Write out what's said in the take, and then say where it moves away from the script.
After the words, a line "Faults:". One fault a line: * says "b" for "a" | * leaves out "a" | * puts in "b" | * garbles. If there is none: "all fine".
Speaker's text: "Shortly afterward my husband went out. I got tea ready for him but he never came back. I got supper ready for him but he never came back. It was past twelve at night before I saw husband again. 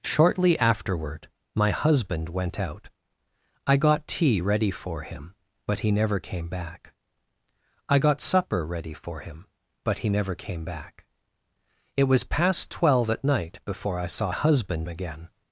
"Shortly afterward my husband went out. I got tea ready for him but he never came back. I got supper ready for him but he never came back. It was past twelve at night before I saw husband again.
Faults:
all fine